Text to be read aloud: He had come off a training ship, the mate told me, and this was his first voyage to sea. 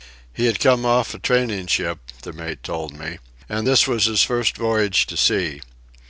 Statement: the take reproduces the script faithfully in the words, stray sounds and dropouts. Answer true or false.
true